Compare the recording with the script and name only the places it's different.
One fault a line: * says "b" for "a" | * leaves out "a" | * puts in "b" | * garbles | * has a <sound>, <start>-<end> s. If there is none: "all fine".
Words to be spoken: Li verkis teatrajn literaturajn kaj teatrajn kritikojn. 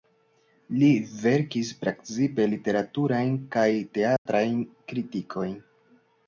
* says "precipe" for "teatrajn"
* has a dropout, 4.2-4.3 s